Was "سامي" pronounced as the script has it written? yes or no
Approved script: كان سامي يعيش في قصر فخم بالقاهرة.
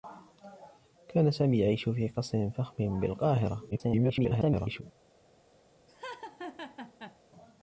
yes